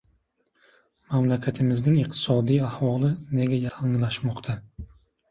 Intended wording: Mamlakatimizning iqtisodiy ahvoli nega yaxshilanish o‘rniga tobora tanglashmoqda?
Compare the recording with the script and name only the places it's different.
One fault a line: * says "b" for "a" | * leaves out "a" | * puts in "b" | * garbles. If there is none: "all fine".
* leaves out "yaxshilanish o‘rniga tobora"